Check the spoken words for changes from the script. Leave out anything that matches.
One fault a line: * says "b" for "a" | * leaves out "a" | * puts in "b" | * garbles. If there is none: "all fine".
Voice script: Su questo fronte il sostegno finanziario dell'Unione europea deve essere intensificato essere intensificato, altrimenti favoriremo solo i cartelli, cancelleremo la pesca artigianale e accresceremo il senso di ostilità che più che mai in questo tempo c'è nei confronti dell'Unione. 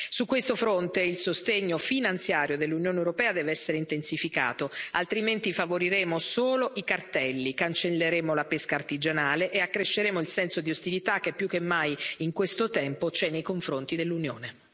* leaves out "essere intensificato"